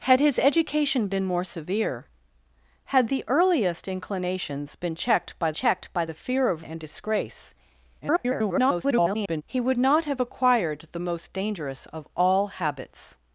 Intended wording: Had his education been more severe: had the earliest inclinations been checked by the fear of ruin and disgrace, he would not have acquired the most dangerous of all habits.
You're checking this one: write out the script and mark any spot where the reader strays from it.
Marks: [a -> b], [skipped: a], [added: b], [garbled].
Had his education been more severe: had the earliest inclinations been checked by [added: checked by] the fear of [skipped: ruin] and disgrace, [garbled] he would not have acquired the most dangerous of all habits.